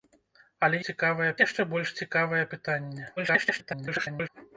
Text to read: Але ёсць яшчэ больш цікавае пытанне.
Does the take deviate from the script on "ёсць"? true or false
true